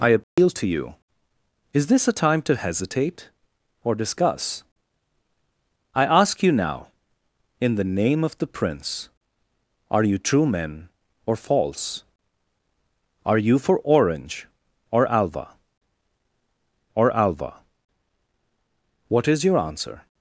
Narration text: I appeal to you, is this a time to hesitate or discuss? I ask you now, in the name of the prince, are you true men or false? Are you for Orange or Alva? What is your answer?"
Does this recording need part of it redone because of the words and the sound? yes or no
yes